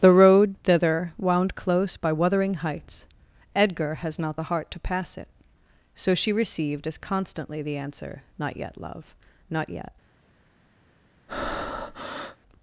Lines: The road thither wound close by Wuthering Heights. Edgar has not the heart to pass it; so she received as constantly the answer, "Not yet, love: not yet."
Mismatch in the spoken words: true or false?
false